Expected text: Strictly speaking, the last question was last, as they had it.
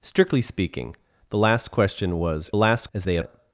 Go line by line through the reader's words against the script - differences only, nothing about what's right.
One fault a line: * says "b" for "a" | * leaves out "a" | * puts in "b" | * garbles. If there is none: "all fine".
all fine